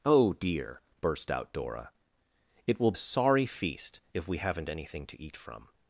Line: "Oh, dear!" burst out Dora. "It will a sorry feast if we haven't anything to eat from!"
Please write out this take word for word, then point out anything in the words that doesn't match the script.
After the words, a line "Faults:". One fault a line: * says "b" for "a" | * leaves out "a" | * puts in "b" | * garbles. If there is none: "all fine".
"Oh, dear!" burst out Dora. "It will a sorry feast if we haven't anything to eat from!"
Faults:
all fine